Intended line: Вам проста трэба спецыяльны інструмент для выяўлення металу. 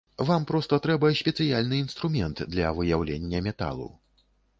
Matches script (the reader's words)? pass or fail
pass